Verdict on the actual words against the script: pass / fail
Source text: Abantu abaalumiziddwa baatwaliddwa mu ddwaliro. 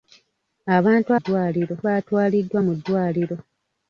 fail